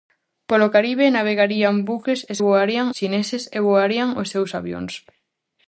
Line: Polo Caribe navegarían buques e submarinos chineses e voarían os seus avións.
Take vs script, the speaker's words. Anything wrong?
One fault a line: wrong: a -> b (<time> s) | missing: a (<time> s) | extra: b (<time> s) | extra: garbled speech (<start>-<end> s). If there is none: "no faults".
wrong: submarinos -> voarían (2.4 s)